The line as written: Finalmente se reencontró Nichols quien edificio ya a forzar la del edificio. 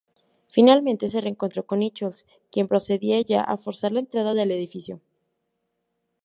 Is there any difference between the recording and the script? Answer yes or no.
yes